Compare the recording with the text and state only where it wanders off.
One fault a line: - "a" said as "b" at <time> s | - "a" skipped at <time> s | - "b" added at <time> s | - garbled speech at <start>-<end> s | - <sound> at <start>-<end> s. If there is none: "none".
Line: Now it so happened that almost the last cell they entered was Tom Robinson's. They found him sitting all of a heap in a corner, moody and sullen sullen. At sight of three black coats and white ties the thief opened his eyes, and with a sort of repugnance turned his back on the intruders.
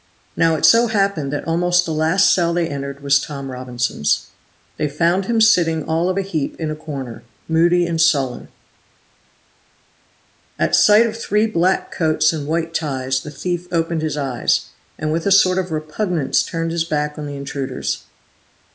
- "sullen" skipped at 8.5 s